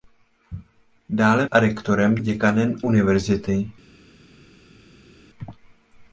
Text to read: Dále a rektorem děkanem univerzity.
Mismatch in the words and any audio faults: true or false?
false